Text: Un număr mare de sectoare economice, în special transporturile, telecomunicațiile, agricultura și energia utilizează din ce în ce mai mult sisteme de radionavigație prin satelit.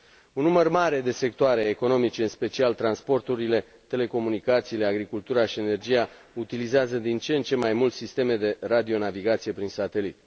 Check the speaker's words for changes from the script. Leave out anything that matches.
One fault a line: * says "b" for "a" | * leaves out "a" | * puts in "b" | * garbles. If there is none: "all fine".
all fine